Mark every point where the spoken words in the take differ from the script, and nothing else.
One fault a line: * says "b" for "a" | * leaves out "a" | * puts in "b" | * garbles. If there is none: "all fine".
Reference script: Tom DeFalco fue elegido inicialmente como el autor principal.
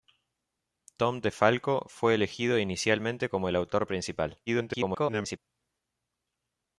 * garbles